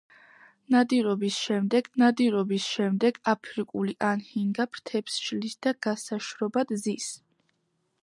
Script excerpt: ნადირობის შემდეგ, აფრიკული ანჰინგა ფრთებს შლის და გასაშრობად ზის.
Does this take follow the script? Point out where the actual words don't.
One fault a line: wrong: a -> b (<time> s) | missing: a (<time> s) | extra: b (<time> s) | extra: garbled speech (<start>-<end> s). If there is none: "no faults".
extra: ნადირობის შემდეგ (2.0 s)